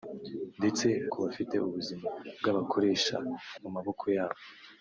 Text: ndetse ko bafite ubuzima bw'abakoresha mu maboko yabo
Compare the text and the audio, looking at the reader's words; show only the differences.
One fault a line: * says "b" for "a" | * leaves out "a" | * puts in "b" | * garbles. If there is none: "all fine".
all fine